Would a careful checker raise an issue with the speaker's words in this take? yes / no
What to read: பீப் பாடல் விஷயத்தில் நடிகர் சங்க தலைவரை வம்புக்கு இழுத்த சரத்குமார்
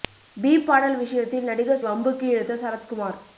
yes